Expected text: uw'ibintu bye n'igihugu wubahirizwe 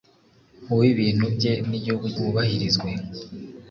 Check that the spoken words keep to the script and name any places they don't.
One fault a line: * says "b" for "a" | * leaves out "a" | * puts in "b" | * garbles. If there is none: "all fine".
all fine